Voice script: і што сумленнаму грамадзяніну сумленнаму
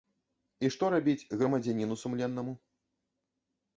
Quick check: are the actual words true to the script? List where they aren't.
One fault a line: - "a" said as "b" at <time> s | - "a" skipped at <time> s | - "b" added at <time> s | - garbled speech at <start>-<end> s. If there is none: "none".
- "сумленнаму" said as "рабіць" at 0.9 s